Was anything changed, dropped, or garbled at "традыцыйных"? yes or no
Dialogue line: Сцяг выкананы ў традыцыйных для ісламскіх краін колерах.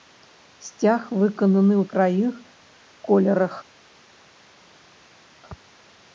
yes